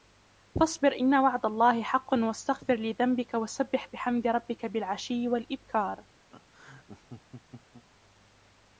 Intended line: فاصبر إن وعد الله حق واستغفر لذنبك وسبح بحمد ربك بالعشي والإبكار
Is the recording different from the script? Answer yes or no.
no